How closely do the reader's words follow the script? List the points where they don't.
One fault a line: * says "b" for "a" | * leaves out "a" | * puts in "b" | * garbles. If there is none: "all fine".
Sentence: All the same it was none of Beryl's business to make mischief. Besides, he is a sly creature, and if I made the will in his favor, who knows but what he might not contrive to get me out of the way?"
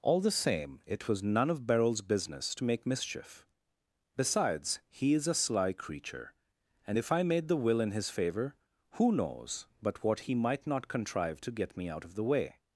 all fine